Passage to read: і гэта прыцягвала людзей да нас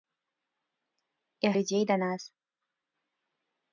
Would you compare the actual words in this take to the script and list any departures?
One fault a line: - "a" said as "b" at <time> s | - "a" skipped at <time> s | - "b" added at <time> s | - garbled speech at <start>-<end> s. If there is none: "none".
- "гэта прыцягвала" skipped at 1.5 s